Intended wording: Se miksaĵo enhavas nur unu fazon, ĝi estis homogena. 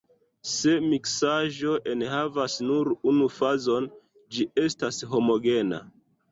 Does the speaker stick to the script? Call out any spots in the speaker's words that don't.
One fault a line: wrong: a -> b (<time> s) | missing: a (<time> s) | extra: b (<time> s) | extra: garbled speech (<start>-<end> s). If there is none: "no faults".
wrong: estis -> estas (4.7 s)